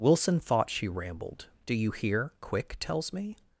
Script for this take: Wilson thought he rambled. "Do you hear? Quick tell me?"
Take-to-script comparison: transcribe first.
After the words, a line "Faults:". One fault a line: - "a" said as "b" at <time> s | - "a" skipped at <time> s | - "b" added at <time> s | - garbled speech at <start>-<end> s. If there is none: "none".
Wilson thought she rambled. "Do you hear? Quick tells me?"
Faults:
- "he" said as "she" at 0.7 s
- "tell" said as "tells" at 2.8 s